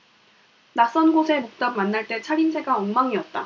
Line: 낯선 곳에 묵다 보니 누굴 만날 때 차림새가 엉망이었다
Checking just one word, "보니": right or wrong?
wrong